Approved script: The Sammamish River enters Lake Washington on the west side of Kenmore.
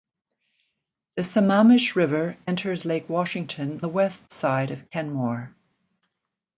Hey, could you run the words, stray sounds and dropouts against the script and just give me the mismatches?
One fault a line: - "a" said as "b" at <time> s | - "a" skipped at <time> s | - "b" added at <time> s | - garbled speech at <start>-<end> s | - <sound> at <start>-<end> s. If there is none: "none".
- "on" skipped at 3.8 s